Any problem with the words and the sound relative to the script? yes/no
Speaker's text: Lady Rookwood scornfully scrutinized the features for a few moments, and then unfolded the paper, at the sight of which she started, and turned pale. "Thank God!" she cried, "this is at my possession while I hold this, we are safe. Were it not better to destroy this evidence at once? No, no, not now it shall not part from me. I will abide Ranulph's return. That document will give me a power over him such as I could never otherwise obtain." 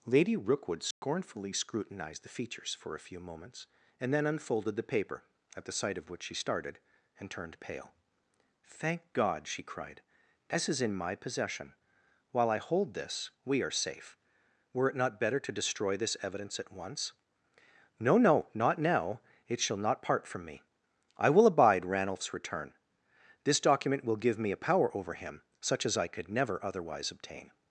yes